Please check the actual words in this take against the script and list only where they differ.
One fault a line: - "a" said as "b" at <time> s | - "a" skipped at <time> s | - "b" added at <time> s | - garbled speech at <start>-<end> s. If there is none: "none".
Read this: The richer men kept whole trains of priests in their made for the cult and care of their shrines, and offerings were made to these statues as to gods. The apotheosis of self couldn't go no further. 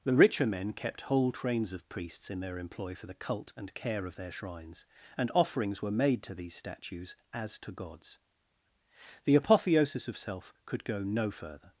- "made" said as "employ" at 2.6 s
- "couldn't" said as "could" at 10.7 s